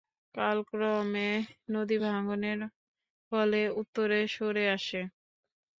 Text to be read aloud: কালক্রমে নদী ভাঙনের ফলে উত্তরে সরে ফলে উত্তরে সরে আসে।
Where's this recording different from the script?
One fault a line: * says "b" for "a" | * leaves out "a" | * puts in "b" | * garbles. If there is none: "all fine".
* leaves out "ফলে উত্তরে সরে"